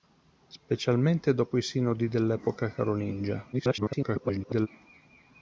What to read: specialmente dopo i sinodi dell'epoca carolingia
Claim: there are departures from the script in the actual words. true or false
true